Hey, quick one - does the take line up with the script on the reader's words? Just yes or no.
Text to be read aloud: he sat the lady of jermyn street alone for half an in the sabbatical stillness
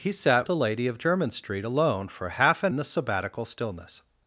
yes